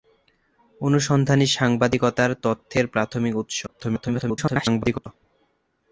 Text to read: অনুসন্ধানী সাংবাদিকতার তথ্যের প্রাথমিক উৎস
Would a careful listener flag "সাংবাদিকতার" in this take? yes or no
no